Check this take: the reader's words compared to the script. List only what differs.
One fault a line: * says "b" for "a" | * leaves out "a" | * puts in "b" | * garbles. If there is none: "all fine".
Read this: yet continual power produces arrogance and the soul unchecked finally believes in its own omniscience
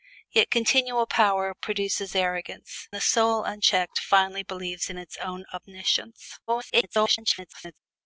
* leaves out "and"
* garbles